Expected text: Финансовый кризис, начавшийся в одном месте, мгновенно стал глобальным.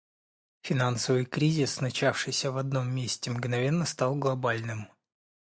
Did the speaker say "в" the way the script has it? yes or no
yes